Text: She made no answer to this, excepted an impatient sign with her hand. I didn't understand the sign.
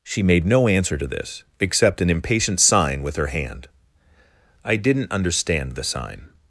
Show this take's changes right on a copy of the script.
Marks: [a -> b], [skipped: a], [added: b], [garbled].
She made no answer to this, [excepted -> except] an impatient sign with her hand. I didn't understand the sign.